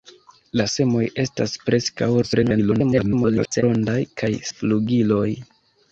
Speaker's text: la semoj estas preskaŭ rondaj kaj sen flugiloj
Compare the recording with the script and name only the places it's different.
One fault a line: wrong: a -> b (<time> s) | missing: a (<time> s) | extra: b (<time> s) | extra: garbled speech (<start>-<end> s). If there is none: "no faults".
extra: garbled speech (2.2-3.6 s)
missing: sen (4.3 s)